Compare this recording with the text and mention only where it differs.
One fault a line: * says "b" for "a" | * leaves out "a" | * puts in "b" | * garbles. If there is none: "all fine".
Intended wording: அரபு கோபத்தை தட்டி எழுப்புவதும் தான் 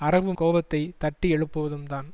all fine